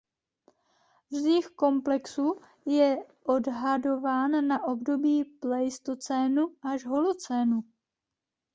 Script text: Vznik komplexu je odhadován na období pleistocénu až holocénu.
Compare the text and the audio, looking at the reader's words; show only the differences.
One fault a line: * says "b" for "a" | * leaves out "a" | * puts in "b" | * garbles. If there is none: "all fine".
all fine